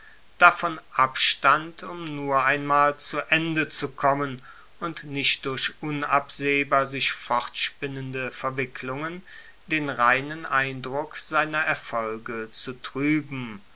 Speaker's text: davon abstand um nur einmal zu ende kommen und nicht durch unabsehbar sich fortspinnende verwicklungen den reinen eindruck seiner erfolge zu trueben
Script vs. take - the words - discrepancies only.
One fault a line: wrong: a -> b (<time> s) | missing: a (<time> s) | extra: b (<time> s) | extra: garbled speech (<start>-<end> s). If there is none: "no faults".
extra: zu (3.7 s)